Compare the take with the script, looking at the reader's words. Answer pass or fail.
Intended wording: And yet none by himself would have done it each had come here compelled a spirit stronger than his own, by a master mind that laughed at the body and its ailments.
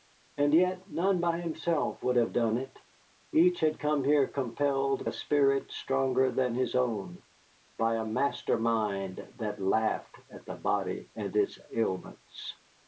pass